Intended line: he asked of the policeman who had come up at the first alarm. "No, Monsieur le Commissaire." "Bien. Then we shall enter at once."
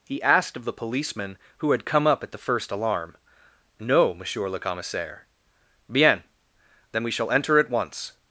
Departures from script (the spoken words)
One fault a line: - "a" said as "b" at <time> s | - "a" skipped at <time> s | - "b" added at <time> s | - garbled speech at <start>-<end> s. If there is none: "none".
none